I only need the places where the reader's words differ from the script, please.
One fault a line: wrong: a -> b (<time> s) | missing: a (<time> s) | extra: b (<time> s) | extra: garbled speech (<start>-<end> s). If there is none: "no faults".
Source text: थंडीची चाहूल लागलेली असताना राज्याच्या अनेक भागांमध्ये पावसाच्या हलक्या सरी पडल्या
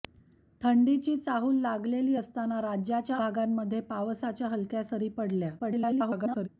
missing: अनेक (3.2 s)
extra: garbled speech (5.6-6.5 s)